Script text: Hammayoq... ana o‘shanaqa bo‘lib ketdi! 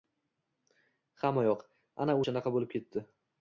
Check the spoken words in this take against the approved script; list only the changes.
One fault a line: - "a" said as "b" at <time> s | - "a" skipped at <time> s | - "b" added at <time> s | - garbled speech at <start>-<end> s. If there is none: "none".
none